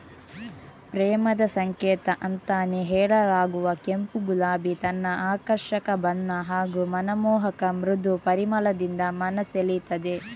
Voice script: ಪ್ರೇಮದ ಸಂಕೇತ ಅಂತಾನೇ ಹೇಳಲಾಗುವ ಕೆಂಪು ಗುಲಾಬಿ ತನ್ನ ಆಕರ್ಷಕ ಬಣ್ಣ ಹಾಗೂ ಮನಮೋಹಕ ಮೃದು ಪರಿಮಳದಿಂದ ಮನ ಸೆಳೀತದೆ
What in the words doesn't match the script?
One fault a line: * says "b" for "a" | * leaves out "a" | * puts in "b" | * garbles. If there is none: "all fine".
all fine